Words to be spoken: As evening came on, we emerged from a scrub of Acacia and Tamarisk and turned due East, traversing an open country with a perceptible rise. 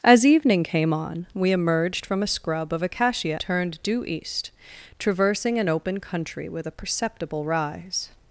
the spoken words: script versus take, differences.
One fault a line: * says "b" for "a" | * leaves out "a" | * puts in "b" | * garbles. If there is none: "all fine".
* leaves out "and Tamarisk and"